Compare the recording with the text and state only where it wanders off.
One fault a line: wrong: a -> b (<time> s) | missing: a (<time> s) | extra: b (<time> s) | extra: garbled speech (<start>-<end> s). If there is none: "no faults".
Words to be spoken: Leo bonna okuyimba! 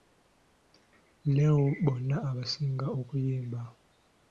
extra: abasinga (2.3 s)